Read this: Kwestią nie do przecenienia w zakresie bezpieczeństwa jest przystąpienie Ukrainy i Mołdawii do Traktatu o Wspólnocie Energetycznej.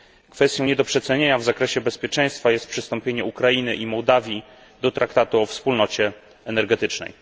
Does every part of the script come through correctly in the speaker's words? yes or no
yes